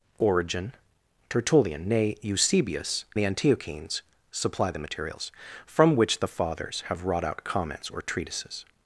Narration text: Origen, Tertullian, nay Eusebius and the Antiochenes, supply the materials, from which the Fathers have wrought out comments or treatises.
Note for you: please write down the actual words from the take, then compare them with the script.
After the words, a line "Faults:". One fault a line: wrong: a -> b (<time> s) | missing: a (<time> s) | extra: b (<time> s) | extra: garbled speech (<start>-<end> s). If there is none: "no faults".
Origen, Tertullian, nay Eusebius the Antiochenes, supply the materials, from which the Fathers have wrought out comments or treatises.
Faults:
missing: and (3.0 s)